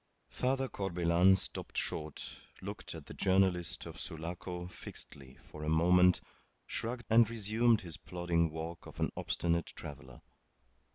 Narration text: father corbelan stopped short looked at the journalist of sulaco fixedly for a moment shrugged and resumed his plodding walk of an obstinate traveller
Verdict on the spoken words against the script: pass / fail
pass